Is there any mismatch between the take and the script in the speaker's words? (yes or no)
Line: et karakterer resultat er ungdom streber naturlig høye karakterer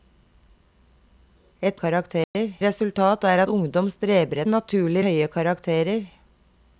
no